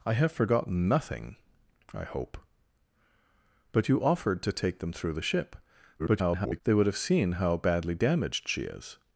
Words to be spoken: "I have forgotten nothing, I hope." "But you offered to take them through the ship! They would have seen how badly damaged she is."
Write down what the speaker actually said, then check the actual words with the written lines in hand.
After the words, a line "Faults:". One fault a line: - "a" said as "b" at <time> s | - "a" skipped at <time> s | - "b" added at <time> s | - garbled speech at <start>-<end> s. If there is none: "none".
"I have forgotten nothing, I hope." "But you offered to take them through the ship! [garbled] They would have seen how badly damaged she is."
Faults:
- garbled speech at 6.0-6.6 s